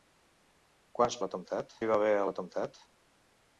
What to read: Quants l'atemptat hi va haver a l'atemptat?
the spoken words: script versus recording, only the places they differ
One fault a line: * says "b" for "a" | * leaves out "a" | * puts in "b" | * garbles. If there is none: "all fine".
all fine